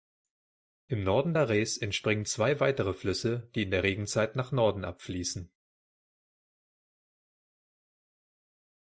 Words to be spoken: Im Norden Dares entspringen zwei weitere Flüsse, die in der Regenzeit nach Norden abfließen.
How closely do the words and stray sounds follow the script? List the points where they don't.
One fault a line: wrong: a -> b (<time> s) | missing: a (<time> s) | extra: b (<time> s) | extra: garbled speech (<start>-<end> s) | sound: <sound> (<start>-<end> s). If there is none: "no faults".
no faults